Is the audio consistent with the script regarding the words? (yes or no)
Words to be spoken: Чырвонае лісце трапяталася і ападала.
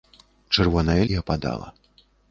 no